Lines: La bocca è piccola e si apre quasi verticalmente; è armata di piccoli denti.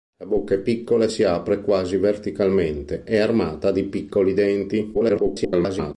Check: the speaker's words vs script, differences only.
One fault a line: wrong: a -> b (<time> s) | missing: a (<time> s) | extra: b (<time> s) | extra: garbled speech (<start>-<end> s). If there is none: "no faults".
extra: garbled speech (4.9-5.9 s)